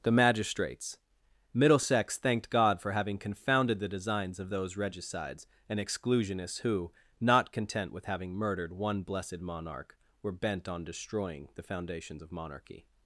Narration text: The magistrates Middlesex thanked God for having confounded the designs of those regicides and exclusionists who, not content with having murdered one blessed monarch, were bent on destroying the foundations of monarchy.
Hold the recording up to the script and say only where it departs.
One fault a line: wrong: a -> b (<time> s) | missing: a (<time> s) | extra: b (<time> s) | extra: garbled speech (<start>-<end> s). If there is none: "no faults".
no faults